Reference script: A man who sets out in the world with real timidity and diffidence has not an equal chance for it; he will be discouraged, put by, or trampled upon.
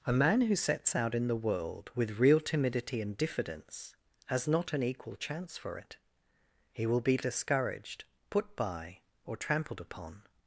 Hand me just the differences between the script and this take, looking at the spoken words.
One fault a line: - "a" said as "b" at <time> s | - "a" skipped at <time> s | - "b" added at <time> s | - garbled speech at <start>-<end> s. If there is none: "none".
none